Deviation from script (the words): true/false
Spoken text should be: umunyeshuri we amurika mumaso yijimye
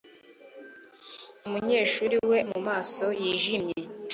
true